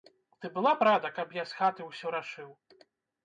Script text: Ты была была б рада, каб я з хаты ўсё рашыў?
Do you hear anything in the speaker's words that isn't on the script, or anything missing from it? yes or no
yes